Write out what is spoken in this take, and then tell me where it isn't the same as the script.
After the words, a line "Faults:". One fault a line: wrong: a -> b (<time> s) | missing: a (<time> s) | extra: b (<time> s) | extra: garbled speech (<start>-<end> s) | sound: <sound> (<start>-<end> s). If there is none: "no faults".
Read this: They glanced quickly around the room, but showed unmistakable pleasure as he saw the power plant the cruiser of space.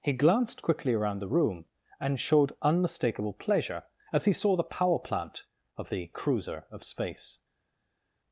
He glanced quickly around the room, and showed unmistakable pleasure as he saw the power plant of the cruiser of space.
Faults:
wrong: They -> He (0.0 s)
wrong: but -> and (2.0 s)
extra: of (5.8 s)